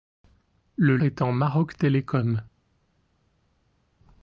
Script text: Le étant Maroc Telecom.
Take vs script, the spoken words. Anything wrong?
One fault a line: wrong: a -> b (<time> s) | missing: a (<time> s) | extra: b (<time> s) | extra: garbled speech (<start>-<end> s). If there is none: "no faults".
no faults